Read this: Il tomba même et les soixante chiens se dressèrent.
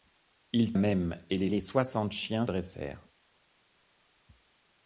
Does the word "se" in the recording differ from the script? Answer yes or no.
yes